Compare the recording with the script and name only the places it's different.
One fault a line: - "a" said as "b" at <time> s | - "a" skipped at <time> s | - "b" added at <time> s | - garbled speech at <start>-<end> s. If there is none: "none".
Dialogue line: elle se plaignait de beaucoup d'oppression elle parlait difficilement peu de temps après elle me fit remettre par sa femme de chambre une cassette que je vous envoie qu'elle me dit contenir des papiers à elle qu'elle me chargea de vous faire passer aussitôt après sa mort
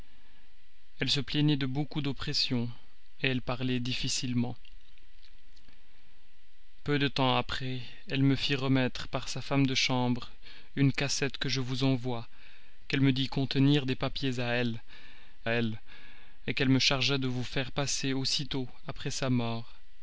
- "elle" added at 15.5 s